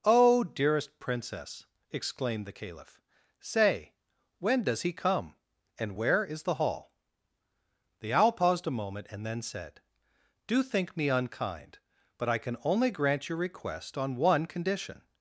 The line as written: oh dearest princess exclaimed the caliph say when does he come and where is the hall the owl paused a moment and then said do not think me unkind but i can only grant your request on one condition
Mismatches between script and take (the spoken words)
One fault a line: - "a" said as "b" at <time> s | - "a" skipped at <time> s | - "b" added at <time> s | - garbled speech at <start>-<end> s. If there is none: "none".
- "not" skipped at 10.6 s